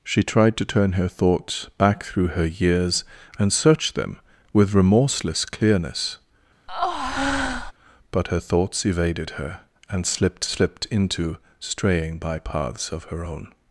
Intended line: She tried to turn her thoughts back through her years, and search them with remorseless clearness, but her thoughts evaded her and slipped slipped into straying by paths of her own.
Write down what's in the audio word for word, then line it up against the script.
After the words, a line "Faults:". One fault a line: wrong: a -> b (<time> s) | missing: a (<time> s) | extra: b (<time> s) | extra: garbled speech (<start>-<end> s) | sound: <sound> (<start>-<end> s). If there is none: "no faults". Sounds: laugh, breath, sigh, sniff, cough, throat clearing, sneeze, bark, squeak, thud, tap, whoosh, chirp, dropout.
She tried to turn her thoughts back through her years, and search them with remorseless clearness, but her thoughts evaded her and slipped slipped into straying by paths of her own.
Faults:
sound: breath (6.7-7.7 s)